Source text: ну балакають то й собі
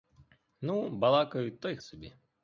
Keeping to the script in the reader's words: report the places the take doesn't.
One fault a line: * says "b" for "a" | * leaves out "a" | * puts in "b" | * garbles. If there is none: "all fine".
all fine